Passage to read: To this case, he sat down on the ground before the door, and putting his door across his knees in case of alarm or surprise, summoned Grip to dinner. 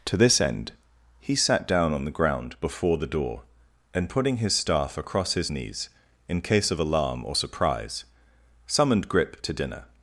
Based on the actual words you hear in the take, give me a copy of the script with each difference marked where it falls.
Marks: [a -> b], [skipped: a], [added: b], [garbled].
To this [case, -> end] he sat down on the ground before the door, and putting his [door -> staff] across his knees in case of alarm or surprise, summoned Grip to dinner.